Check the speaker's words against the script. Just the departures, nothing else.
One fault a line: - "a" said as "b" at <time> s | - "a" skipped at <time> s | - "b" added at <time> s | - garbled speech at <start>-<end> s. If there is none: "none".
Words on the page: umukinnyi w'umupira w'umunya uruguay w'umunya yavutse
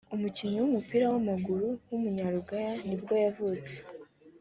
- "w'amaguru" added at 1.1 s
- "w'umunya" said as "nibwo" at 2.9 s